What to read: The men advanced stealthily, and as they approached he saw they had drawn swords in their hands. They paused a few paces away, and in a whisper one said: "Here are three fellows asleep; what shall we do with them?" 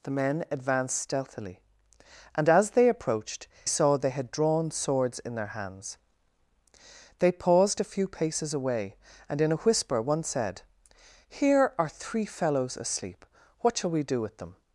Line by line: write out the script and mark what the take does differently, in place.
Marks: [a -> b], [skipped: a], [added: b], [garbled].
The men advanced stealthily, and as they approached [skipped: he] saw they had drawn swords in their hands. They paused a few paces away, and in a whisper one said: "Here are three fellows asleep; what shall we do with them?"